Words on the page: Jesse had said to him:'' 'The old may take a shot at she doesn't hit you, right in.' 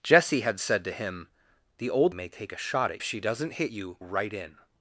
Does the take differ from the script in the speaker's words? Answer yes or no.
no